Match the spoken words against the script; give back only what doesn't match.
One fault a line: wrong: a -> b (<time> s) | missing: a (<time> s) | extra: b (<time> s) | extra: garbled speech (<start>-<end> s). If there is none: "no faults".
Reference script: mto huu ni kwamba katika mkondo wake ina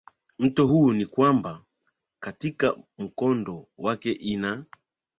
no faults